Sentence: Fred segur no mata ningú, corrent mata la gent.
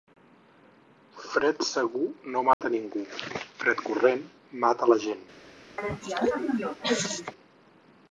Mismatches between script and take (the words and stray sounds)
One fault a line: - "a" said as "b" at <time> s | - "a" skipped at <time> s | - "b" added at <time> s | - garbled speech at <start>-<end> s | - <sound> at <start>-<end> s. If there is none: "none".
- dropout at 2.5-2.6 s
- "fred" added at 3.6 s
- cough at 5.8-7.3 s